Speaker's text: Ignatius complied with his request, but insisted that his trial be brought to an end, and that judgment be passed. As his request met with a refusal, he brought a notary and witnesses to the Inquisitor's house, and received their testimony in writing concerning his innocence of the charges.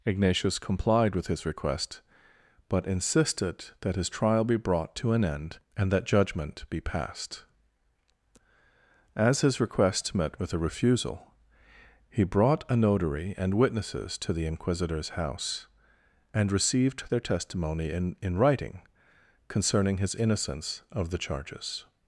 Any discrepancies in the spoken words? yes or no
yes